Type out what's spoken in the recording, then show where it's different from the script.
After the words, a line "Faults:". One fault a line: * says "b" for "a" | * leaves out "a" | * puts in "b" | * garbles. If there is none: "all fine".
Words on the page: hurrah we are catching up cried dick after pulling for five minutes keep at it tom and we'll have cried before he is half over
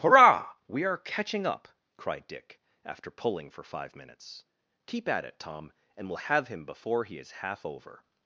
hurrah we are catching up cried dick after pulling for five minutes keep at it tom and we'll have him before he is half over
Faults:
* says "him" for "cried"